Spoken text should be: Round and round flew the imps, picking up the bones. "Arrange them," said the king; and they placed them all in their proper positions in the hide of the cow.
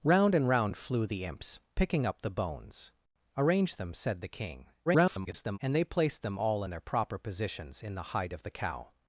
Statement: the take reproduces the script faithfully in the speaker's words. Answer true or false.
false